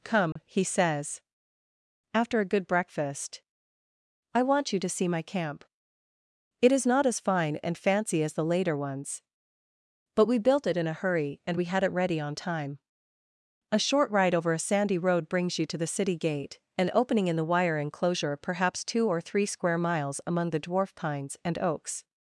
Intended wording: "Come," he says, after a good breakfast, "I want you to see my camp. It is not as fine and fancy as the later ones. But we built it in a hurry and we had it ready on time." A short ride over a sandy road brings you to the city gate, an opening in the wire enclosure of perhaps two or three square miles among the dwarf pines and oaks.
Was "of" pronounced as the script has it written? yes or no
no